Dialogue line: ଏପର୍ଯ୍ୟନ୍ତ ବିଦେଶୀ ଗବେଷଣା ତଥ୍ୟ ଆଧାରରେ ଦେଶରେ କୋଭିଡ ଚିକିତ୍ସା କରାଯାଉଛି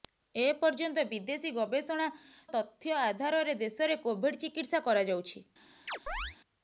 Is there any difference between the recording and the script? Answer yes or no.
no